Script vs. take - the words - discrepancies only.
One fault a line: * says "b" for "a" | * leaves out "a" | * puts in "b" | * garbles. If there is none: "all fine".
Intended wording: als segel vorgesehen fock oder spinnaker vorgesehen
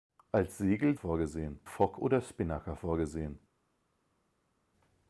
all fine